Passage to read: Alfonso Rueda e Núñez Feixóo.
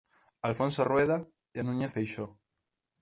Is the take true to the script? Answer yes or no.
yes